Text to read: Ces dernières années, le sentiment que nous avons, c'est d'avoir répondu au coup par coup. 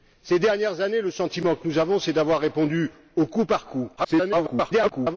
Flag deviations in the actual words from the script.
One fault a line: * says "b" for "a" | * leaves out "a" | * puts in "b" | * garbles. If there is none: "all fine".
* garbles